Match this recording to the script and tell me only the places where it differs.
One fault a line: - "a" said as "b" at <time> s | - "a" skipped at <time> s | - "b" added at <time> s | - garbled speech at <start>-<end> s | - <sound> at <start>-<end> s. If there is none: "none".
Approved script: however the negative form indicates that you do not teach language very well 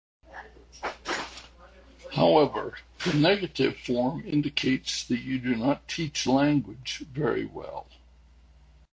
none